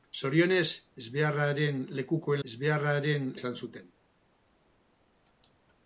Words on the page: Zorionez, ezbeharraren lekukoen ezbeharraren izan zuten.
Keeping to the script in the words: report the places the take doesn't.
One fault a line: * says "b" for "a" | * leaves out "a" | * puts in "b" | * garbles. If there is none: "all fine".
all fine